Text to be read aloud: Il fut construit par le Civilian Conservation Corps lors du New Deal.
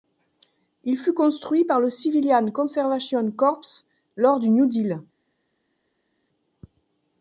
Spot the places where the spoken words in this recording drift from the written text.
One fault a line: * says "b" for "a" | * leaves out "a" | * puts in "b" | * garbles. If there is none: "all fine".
all fine